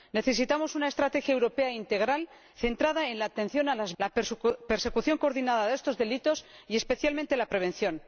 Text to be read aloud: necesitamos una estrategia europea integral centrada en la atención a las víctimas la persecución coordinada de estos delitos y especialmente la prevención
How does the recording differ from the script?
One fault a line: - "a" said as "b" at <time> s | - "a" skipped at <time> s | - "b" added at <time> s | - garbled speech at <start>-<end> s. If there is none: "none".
- "víctimas" skipped at 3.9 s